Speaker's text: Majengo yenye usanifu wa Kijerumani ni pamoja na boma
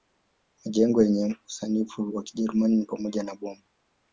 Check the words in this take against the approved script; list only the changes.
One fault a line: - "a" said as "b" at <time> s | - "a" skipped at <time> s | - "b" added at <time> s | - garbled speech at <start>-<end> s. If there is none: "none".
none